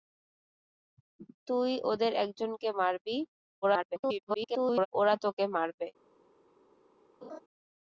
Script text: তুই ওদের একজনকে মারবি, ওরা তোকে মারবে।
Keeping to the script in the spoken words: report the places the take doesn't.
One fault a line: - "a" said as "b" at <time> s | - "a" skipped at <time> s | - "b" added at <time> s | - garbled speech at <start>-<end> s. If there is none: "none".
- garbled speech at 3.6-4.9 s